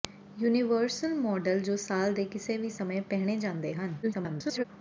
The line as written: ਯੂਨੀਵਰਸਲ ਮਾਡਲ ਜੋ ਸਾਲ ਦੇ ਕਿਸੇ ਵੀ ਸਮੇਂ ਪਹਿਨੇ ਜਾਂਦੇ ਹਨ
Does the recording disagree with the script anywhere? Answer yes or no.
yes